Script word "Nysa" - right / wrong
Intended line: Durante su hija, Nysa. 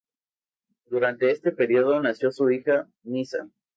right